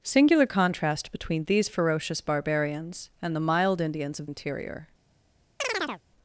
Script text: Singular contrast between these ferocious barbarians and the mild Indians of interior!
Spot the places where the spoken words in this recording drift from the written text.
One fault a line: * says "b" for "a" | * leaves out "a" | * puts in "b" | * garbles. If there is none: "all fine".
all fine